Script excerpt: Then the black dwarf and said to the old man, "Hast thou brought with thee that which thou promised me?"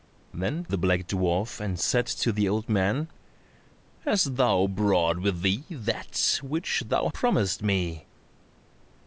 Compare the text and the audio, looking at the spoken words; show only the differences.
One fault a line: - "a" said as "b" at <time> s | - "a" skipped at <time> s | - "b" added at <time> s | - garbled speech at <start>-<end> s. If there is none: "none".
none